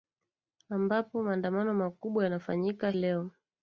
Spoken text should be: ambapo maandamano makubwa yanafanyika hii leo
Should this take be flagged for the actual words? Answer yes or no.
yes